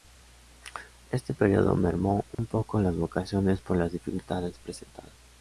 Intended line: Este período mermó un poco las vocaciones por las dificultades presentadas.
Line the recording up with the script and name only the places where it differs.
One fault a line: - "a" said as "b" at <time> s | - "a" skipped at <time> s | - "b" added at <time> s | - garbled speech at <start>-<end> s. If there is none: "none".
none